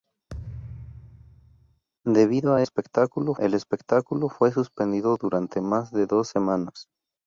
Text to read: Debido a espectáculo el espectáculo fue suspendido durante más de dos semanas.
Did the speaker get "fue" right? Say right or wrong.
right